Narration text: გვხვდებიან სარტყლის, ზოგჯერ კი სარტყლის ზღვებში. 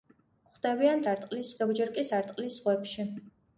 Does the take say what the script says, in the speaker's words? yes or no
yes